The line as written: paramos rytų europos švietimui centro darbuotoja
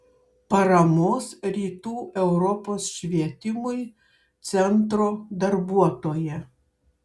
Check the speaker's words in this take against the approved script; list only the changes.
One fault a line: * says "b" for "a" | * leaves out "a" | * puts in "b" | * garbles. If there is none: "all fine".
all fine